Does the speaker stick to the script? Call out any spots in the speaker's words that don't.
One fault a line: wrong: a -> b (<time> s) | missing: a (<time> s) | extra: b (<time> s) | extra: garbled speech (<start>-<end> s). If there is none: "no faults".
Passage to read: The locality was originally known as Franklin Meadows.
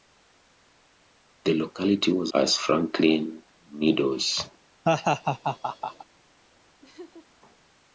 missing: originally known (2.3 s)